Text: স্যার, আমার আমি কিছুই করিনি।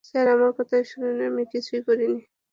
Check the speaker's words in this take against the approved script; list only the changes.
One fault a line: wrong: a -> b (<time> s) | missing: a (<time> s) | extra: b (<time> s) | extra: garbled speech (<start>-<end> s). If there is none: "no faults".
extra: কথা শুনুন (0.6 s)